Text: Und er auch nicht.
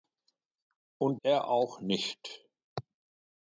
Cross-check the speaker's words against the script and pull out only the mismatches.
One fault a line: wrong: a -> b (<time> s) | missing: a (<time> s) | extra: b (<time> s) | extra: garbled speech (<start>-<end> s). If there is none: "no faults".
no faults